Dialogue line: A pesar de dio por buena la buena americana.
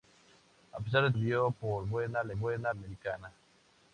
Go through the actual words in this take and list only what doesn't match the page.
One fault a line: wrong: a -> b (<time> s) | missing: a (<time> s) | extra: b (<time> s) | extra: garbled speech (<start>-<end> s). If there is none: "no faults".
no faults